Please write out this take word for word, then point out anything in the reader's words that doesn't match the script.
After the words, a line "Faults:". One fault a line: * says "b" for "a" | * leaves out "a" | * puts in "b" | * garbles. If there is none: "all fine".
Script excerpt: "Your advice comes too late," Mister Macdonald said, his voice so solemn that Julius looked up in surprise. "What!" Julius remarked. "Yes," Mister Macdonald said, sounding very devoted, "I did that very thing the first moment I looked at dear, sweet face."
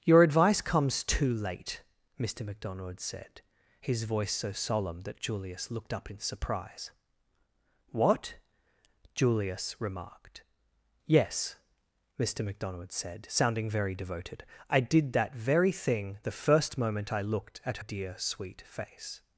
"Your advice comes too late," Mister Macdonald said, his voice so solemn that Julius looked up in surprise. "What!" Julius remarked. "Yes," Mister Macdonald said, sounding very devoted, "I did that very thing the first moment I looked at dear, sweet face."
Faults:
all fine